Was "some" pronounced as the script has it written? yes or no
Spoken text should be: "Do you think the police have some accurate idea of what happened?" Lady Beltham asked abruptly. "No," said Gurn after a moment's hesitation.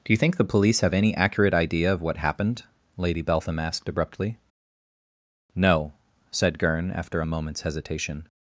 no